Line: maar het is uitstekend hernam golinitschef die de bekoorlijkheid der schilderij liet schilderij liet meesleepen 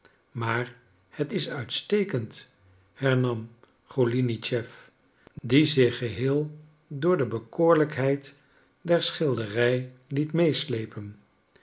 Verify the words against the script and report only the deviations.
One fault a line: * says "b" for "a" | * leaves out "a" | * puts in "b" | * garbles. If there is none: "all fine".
* puts in "zich geheel door"
* leaves out "schilderij liet"